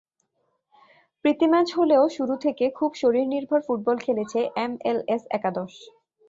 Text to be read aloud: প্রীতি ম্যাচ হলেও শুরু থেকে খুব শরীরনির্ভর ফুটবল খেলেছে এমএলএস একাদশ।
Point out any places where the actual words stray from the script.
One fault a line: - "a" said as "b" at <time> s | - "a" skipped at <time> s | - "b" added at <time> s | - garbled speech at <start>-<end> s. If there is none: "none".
none